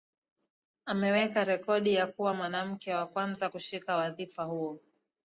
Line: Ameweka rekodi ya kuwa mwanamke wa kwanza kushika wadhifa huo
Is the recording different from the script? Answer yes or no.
no